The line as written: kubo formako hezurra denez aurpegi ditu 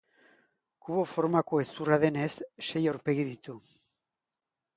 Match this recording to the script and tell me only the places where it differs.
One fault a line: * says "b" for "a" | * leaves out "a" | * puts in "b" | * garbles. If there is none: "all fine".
* puts in "sei"